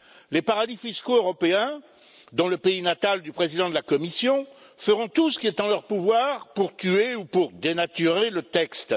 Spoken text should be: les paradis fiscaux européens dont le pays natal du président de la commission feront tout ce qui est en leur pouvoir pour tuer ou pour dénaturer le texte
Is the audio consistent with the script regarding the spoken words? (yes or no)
yes